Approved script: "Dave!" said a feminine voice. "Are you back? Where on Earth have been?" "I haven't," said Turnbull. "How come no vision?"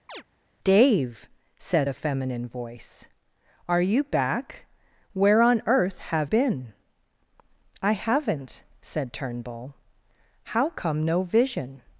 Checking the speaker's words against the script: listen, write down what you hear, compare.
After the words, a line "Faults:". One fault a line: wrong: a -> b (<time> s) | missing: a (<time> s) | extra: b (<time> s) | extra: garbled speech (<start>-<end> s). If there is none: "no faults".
"Dave!" said a feminine voice. "Are you back? Where on Earth have been?" "I haven't," said Turnbull. "How come no vision?"
Faults:
no faults